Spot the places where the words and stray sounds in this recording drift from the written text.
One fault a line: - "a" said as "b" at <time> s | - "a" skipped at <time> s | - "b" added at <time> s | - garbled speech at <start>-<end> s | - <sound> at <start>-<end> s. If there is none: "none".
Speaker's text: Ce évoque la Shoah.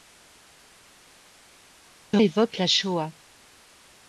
none